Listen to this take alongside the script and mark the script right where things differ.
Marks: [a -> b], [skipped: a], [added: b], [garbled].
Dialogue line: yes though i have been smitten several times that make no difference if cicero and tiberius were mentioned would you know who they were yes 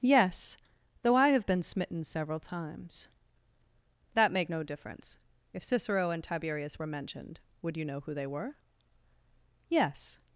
yes though i have been smitten several times that make no difference if cicero and tiberius were mentioned would you know who they were yes